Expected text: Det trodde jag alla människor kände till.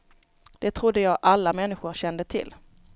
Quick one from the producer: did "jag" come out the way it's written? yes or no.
yes